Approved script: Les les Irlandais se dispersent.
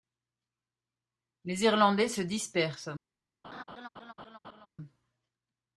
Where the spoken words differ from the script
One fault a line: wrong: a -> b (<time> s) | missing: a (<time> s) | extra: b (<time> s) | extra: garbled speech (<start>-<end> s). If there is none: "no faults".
missing: les (1.6 s)